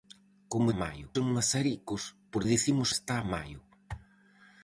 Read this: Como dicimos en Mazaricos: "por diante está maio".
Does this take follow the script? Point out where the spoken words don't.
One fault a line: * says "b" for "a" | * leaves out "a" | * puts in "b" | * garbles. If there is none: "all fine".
* says "maio" for "dicimos"
* says "dicimos" for "diante"